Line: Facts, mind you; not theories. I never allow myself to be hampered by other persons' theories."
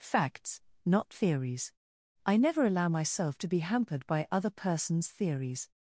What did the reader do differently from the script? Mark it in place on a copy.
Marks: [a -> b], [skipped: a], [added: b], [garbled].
Facts, [skipped: mind you;] not theories. I never allow myself to be hampered by other persons' theories."